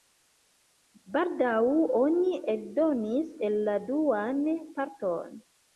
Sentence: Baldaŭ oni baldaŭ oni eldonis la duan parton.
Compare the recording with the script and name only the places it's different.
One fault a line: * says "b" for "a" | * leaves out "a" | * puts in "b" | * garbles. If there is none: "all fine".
* leaves out "baldaŭ oni"